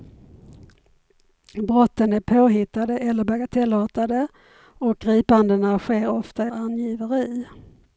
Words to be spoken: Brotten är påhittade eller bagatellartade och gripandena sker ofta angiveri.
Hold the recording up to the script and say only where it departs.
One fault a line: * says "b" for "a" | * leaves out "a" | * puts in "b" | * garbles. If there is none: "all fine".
all fine